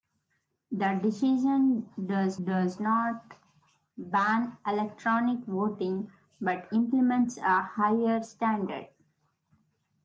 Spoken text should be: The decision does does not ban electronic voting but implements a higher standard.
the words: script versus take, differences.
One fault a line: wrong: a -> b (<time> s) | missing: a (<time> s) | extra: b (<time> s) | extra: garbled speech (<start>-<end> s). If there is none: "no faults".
no faults